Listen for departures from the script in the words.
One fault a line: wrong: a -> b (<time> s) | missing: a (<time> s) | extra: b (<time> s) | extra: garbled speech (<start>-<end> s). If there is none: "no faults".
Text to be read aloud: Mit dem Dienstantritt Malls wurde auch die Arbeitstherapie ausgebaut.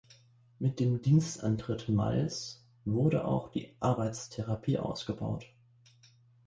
no faults